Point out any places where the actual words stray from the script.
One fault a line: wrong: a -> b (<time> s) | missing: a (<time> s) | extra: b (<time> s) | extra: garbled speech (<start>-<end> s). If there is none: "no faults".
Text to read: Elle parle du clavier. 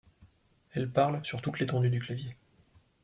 extra: sur toute l'étendue (1.2 s)